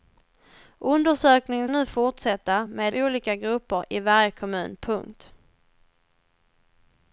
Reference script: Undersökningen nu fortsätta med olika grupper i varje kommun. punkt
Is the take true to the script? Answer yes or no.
yes